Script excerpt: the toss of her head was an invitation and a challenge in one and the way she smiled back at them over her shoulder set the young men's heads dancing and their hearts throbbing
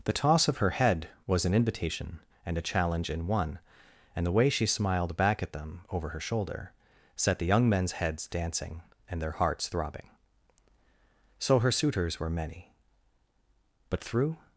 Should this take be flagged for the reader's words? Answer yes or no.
yes